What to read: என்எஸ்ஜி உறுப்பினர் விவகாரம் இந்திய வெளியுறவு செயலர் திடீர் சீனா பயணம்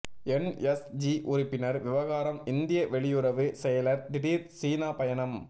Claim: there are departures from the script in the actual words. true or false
false